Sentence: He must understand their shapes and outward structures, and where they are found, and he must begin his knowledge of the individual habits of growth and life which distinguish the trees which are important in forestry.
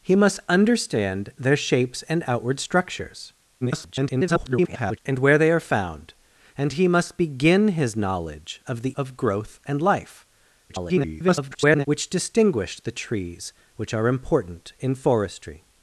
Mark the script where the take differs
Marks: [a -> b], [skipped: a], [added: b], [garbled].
He must understand their shapes and outward structures, [garbled] and where they are found, and he must begin his knowledge of the [skipped: individual habits] of growth and life [garbled] which distinguish the trees which are important in forestry.